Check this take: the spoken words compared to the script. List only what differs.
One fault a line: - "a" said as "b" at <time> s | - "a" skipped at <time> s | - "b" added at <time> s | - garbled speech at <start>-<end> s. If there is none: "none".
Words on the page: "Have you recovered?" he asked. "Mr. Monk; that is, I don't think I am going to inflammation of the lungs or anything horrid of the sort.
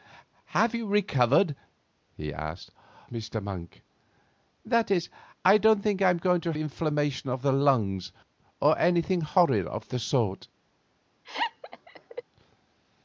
none